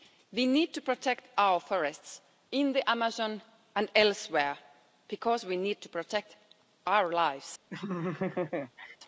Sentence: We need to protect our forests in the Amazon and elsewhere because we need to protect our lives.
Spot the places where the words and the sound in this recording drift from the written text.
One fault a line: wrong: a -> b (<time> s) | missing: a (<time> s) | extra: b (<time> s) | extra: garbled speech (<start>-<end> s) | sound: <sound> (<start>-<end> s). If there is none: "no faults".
sound: laugh (7.7-9.0 s)